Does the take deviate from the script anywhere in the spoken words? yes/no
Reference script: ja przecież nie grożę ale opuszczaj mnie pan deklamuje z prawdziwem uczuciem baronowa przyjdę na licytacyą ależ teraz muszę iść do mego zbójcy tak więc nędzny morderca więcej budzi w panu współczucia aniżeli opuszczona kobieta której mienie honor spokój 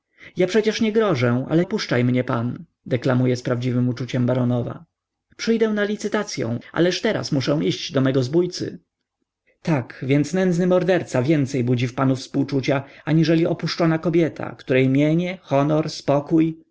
no